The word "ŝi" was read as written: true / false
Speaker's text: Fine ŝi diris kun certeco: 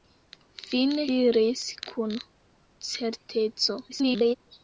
false